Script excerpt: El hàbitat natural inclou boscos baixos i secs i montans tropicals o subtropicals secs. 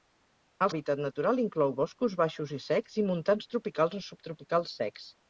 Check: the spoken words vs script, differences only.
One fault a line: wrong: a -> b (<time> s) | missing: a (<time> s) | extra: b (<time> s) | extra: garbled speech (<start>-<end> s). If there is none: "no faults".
no faults